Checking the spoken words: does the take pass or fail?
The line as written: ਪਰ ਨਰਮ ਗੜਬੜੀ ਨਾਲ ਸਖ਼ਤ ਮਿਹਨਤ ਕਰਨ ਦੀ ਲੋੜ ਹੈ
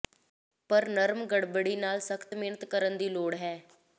pass